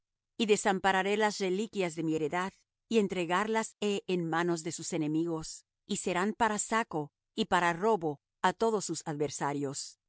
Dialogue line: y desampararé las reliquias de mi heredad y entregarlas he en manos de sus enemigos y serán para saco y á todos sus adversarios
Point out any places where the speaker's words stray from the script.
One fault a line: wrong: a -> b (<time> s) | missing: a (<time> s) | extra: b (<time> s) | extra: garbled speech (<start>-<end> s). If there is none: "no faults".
extra: para robo (7.5 s)